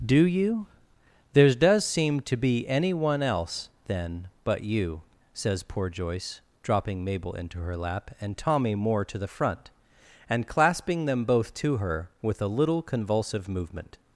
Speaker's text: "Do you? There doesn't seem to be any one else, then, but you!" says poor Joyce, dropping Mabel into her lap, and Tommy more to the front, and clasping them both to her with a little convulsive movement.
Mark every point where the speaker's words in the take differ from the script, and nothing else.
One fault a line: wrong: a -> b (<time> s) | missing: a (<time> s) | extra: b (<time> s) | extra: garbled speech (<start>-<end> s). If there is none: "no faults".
wrong: doesn't -> does (1.5 s)